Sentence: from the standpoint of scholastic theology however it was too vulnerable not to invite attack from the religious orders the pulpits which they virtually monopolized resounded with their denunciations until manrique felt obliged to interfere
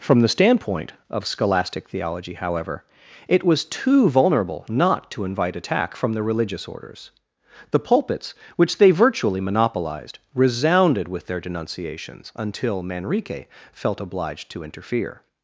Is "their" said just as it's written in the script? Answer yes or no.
yes